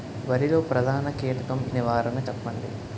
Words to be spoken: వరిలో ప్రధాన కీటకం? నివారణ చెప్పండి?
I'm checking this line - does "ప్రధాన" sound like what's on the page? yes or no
yes